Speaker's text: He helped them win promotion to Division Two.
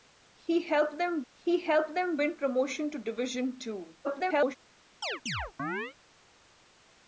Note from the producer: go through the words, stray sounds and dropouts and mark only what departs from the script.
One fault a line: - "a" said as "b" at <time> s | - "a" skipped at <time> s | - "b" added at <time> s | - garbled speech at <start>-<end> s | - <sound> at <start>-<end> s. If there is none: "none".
- "he helped them" added at 1.3 s
- garbled speech at 4.0-4.6 s
- chirp at 5.0-6.0 s